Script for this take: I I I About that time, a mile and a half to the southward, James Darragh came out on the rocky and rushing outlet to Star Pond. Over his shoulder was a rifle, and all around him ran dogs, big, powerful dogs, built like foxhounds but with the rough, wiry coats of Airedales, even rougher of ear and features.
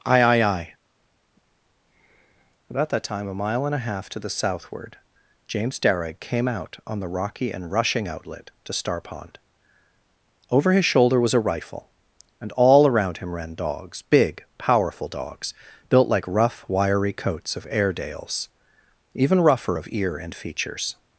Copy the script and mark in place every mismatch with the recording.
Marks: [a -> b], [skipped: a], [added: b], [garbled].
I I I About that time, a mile and a half to the southward, James Darragh came out on the rocky and rushing outlet to Star Pond. Over his shoulder was a rifle, and all around him ran dogs, big, powerful dogs, built like [skipped: foxhounds but with the] rough, wiry coats of Airedales, even rougher of ear and features.